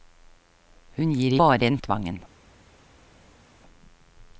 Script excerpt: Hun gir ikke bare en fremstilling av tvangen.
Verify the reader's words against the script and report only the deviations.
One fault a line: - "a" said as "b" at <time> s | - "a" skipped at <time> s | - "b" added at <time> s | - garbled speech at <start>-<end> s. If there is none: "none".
- "ikke" skipped at 1.4 s
- "fremstilling" skipped at 1.8 s